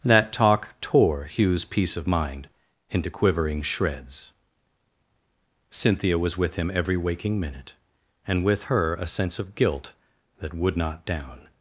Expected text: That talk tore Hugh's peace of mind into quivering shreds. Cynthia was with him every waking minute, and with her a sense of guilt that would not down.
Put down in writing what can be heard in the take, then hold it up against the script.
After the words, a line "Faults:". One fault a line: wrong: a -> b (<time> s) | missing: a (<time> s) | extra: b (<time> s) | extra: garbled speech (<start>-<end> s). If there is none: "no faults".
That talk tore Hugh's peace of mind into quivering shreds. Cynthia was with him every waking minute, and with her a sense of guilt that would not down.
Faults:
no faults